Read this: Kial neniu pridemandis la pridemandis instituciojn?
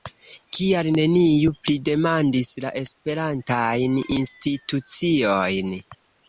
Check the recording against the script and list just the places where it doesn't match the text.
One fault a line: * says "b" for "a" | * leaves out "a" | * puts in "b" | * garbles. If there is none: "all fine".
* says "esperantajn" for "pridemandis"